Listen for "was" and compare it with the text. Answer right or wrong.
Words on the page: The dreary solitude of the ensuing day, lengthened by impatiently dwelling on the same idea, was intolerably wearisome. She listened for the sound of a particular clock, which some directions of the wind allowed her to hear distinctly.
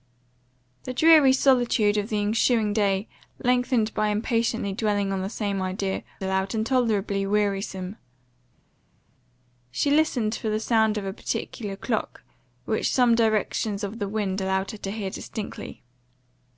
wrong